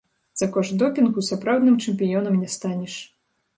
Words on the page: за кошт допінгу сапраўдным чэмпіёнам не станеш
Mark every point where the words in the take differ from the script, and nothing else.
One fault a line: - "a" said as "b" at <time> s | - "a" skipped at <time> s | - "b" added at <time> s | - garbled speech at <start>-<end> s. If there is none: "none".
none